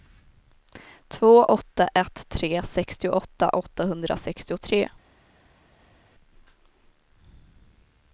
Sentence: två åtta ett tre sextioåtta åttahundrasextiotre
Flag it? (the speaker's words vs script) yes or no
no